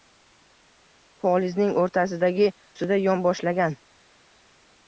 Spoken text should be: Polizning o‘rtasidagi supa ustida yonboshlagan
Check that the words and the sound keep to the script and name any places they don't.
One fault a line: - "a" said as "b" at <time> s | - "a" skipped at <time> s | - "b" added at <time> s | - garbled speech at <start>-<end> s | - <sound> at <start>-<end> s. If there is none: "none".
- "supa" skipped at 2.5 s